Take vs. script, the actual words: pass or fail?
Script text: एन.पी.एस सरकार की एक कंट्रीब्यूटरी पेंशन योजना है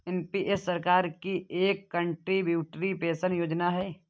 pass